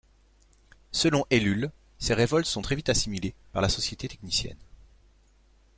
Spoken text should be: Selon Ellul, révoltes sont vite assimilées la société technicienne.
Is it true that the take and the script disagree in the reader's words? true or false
true